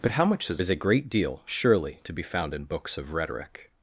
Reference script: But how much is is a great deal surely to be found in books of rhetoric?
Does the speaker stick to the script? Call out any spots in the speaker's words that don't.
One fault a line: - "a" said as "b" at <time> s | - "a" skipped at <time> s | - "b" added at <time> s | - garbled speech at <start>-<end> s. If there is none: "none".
none